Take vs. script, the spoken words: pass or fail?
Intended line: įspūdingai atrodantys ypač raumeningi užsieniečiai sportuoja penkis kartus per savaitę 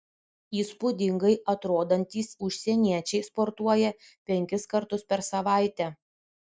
fail